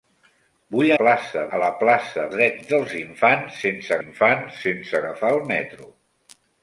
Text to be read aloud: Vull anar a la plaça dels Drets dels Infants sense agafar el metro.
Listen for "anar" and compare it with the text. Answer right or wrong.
wrong